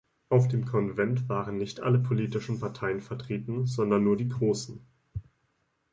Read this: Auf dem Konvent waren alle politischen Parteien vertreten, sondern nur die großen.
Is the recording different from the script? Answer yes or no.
yes